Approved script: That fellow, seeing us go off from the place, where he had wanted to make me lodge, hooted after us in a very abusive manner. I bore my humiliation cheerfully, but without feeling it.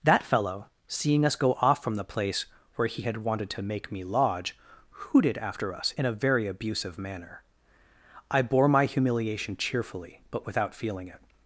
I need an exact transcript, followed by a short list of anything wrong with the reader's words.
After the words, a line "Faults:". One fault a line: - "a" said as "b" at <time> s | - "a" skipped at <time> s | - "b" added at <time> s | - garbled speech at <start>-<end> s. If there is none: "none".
That fellow, seeing us go off from the place, where he had wanted to make me lodge, hooted after us in a very abusive manner. I bore my humiliation cheerfully, but without feeling it.
Faults:
none